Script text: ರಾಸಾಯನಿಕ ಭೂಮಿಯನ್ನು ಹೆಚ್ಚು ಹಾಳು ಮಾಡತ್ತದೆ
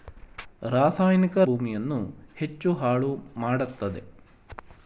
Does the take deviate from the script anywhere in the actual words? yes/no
no